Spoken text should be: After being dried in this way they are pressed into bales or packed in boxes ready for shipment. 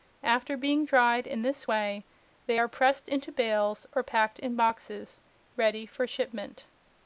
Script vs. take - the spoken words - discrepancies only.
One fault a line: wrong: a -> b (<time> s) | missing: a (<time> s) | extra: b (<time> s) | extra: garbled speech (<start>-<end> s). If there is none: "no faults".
no faults